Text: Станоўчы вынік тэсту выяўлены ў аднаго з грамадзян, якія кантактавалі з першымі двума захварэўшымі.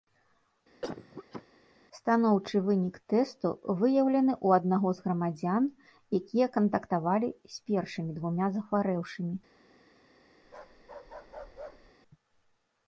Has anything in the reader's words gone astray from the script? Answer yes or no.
no